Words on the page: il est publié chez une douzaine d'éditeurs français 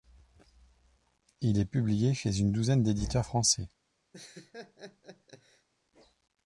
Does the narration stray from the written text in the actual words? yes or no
no